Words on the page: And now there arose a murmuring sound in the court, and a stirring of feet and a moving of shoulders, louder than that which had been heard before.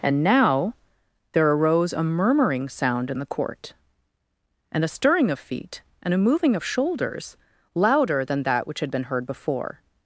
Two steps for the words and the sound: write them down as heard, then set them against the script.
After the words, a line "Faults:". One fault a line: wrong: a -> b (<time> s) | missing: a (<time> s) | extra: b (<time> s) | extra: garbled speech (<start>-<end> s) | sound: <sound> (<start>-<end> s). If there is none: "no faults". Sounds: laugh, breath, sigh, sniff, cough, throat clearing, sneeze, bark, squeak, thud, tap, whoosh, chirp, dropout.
And now there arose a murmuring sound in the court, and a stirring of feet and a moving of shoulders, louder than that which had been heard before.
Faults:
no faults